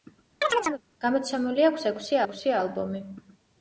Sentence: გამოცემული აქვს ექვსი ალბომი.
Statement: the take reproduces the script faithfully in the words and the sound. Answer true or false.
false